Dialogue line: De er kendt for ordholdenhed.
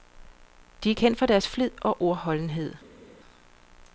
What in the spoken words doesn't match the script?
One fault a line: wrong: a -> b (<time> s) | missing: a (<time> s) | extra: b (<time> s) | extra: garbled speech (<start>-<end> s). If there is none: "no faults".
extra: deres flid og (1.3 s)